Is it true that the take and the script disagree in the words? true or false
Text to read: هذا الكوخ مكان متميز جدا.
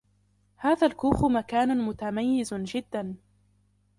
false